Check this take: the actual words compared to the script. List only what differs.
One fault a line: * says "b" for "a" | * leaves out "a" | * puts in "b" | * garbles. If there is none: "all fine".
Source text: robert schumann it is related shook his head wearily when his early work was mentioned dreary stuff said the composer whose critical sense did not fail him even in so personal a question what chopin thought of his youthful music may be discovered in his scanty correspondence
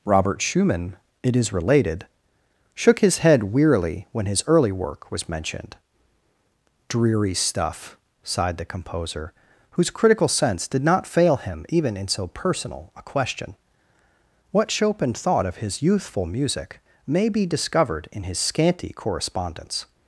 * says "sighed" for "said"